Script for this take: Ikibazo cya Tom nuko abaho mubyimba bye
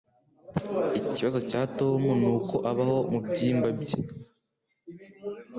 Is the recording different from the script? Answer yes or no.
no